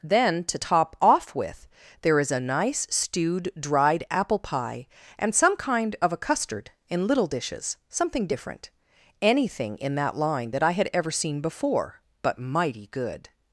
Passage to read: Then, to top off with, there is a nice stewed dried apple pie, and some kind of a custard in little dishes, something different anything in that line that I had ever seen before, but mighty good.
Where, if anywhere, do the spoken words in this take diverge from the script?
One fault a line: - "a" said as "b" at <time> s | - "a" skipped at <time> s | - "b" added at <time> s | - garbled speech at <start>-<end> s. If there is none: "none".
none